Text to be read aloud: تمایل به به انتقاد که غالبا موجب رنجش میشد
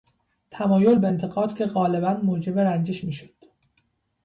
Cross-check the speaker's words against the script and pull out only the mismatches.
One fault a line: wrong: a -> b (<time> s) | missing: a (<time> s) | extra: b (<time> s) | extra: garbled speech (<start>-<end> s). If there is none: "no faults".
missing: به (1.1 s)